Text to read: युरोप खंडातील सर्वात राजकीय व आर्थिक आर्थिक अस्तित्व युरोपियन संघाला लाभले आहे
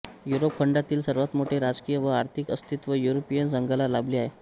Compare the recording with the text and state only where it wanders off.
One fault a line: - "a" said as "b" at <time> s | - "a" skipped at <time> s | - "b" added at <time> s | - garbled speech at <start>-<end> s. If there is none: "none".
- "मोठे" added at 1.4 s
- "आर्थिक" skipped at 2.5 s